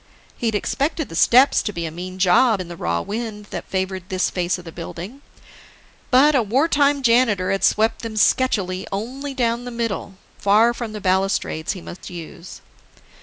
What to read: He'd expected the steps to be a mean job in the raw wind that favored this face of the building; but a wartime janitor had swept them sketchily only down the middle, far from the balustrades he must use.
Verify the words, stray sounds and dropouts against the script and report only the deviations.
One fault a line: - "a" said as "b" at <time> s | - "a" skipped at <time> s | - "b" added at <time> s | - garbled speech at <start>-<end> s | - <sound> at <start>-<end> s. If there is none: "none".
- dropout at 12.0-12.0 s